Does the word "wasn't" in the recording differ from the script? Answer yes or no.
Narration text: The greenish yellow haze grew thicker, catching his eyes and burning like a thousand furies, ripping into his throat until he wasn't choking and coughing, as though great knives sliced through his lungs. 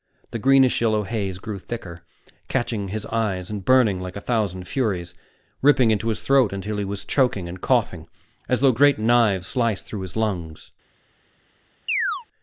yes